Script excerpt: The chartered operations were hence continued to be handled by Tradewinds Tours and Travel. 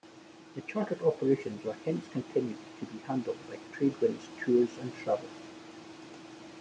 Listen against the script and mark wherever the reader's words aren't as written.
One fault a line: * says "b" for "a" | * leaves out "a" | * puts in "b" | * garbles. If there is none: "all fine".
all fine